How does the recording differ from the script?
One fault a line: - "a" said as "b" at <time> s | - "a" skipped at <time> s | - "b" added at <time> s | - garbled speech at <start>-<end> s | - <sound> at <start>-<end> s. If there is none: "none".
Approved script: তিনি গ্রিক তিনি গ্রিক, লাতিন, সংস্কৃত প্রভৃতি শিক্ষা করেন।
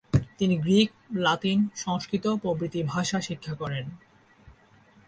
- "তিনি গ্রিক" skipped at 0.9 s
- "ভাষা" added at 2.8 s